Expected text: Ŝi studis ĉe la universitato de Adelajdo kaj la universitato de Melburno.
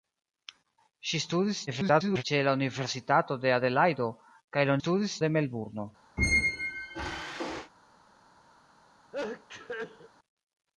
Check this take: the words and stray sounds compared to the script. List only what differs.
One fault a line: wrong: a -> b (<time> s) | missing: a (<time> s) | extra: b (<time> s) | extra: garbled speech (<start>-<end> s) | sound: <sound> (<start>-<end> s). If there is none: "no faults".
extra: garbled speech (1.7-2.2 s)
wrong: universitato -> studis (4.8 s)
sound: squeak (6.2-7.7 s)
sound: sneeze (9.1-10.1 s)